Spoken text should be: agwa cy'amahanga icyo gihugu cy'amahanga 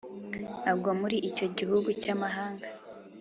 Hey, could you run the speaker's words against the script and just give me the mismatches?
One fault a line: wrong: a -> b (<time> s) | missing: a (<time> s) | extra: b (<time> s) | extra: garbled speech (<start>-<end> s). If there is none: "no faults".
wrong: cy'amahanga -> muri (1.0 s)